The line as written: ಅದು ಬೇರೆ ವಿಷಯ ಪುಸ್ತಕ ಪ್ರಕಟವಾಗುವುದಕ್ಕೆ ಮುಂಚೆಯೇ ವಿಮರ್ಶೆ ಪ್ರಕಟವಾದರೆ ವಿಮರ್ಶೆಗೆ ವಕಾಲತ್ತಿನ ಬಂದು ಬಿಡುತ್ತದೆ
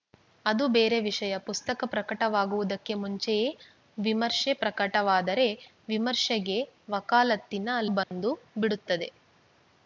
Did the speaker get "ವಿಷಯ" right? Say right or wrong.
right